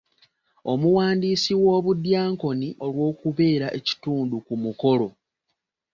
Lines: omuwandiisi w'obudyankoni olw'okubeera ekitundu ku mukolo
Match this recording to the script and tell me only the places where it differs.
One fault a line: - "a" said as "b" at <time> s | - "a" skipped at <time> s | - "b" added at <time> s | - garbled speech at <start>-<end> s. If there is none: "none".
none